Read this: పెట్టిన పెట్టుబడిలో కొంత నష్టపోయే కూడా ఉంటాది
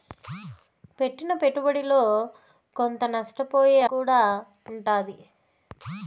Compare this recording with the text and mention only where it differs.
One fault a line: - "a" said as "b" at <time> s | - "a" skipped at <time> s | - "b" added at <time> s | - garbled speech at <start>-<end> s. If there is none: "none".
none